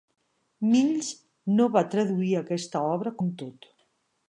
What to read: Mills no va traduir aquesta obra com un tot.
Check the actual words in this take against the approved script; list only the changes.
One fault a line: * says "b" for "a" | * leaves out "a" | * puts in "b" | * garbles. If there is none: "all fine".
* leaves out "com"